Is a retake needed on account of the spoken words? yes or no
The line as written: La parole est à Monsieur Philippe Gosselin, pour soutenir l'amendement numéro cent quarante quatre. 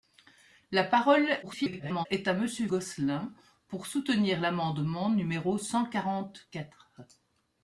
yes